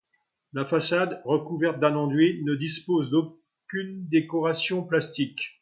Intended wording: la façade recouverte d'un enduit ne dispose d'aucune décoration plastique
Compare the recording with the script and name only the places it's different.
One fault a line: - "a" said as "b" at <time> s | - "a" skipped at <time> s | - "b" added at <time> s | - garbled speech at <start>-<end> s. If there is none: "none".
none